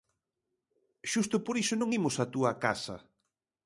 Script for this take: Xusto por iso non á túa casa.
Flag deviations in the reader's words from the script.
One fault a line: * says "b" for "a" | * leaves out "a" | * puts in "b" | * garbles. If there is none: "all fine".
* puts in "imos"